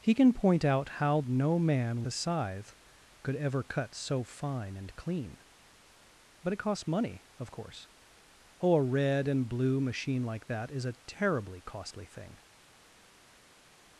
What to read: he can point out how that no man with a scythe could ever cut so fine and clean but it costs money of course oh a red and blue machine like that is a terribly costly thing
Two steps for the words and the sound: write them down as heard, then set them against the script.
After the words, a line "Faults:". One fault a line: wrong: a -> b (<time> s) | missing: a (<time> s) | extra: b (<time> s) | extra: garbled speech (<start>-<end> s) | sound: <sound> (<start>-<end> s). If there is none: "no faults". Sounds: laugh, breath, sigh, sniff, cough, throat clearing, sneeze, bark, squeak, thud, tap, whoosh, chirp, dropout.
he can point out how no man a scythe could ever cut so fine and clean but it costs money of course oh a red and blue machine like that is a terribly costly thing
Faults:
missing: that (1.2 s)
missing: with (2.0 s)